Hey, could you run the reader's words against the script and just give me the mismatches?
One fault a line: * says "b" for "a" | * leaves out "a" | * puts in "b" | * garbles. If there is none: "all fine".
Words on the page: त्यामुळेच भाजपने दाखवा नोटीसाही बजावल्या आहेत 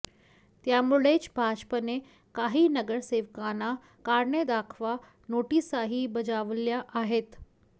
* puts in "काही नगरसेवकांना कारणे"